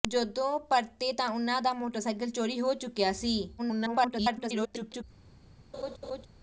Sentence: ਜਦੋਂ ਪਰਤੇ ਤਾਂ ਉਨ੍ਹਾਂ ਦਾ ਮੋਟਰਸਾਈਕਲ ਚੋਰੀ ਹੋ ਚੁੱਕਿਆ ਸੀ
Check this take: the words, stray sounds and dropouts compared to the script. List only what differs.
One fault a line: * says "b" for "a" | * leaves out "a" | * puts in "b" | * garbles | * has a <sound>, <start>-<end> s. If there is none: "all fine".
* garbles
* has a laugh, 5.7-6.3 s